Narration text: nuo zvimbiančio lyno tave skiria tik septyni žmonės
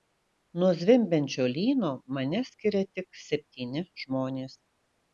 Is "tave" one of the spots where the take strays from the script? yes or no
yes